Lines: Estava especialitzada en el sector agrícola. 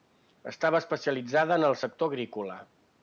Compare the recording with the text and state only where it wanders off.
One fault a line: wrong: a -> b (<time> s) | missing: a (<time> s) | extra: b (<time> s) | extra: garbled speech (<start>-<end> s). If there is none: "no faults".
no faults